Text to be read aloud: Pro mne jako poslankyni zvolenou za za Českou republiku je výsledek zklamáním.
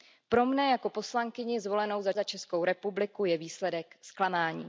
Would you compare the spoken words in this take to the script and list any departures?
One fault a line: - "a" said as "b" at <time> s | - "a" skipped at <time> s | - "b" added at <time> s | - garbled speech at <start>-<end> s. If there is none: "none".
none